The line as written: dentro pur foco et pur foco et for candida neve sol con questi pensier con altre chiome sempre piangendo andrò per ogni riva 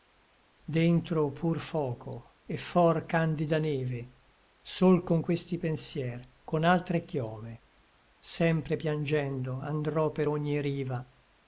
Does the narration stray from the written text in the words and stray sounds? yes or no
yes